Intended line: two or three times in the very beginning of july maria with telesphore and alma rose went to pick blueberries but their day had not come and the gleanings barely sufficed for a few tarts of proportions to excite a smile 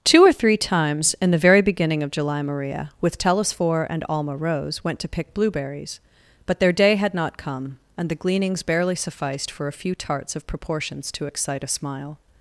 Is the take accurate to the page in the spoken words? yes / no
yes